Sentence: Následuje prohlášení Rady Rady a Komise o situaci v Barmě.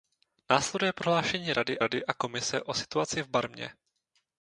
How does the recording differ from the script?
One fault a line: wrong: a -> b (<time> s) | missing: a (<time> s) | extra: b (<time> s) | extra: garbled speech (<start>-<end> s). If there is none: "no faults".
no faults